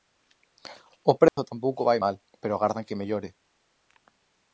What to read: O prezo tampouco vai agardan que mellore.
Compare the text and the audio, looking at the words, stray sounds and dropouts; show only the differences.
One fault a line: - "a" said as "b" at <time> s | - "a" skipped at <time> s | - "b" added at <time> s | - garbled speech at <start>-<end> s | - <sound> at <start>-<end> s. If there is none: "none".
- dropout at 1.3-1.4 s
- "mal pero" added at 2.0 s